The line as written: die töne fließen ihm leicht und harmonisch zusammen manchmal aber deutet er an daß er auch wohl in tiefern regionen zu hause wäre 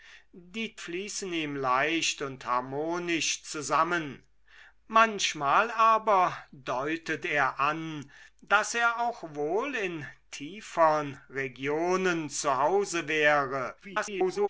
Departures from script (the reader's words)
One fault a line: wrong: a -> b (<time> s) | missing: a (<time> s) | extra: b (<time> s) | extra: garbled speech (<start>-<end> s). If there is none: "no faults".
missing: töne (0.8 s)
extra: garbled speech (13.8-14.5 s)